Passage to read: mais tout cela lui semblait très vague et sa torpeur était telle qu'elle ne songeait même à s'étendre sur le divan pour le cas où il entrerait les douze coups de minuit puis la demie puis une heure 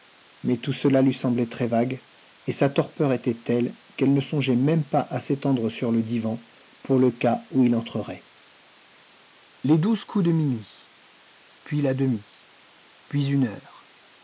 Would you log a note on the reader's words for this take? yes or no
yes